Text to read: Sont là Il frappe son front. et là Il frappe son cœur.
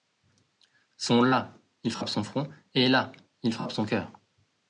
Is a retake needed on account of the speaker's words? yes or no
no